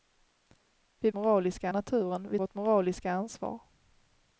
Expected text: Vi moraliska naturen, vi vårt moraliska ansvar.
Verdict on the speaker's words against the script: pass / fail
pass